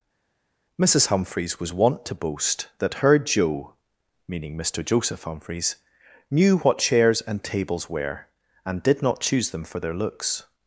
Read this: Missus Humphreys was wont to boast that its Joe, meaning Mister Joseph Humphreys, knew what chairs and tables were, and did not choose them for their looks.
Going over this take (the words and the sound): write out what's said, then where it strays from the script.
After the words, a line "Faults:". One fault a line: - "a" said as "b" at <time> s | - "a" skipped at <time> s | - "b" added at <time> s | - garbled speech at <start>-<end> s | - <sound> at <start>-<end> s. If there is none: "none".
Missus Humphreys was wont to boast that her Joe, meaning Mister Joseph Humphreys, knew what chairs and tables were, and did not choose them for their looks.
Faults:
- "its" said as "her" at 3.0 s